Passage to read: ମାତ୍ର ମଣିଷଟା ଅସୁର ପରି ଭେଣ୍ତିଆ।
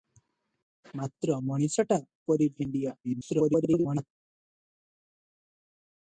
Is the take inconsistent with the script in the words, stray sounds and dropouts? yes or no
yes